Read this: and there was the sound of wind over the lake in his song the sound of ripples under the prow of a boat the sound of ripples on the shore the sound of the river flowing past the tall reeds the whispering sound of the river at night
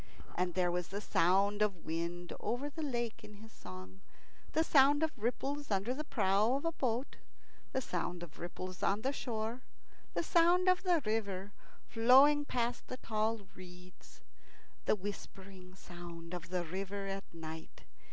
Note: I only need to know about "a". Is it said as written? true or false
true